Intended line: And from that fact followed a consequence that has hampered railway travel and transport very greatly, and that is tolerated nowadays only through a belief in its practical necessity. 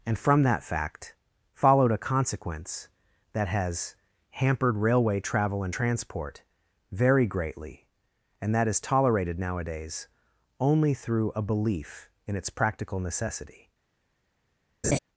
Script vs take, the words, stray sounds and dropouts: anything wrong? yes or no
yes